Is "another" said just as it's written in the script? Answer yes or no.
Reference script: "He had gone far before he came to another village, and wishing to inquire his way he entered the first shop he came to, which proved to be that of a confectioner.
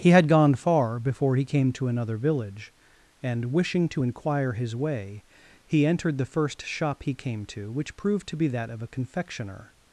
yes